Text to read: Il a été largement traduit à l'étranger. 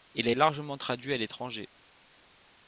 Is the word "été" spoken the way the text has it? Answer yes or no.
no